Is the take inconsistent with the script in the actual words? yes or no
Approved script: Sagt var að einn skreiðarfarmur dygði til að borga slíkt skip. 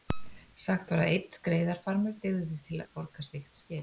no